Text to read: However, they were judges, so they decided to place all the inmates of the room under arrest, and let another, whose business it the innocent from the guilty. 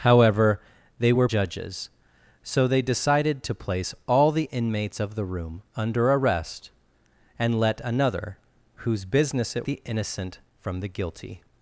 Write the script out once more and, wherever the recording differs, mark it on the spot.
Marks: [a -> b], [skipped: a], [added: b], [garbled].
However, they were judges, so they decided to place all the inmates of the room under arrest, and let another, whose business it the innocent from the guilty.